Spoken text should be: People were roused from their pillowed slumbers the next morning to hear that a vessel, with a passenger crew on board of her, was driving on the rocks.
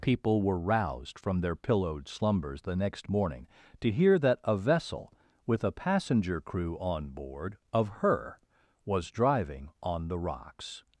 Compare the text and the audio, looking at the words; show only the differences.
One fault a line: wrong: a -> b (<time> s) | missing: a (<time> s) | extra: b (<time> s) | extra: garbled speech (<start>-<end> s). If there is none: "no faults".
no faults